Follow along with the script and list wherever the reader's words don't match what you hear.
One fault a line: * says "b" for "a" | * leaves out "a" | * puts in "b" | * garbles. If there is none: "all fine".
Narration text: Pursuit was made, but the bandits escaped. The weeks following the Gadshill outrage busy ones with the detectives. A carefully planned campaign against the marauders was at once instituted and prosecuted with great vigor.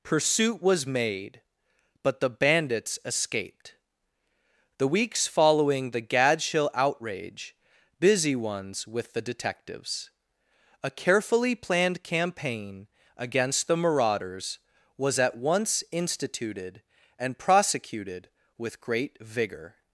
all fine